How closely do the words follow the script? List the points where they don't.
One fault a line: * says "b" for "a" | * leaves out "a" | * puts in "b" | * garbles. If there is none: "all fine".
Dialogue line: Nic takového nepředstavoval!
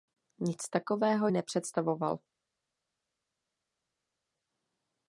all fine